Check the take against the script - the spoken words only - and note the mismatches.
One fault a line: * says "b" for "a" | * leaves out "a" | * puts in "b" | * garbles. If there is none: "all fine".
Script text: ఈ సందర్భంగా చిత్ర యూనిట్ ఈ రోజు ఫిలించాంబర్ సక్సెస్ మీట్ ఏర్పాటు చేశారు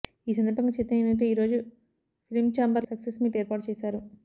all fine